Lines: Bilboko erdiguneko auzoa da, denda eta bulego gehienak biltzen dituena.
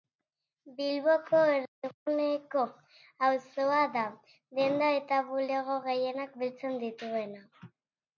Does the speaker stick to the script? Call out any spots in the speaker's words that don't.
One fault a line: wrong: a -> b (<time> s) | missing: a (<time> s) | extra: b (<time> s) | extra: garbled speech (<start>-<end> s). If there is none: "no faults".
no faults